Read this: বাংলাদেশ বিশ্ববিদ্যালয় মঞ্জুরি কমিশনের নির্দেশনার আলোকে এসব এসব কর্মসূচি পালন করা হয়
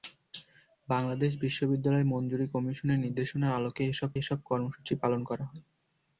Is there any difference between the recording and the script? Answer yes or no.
no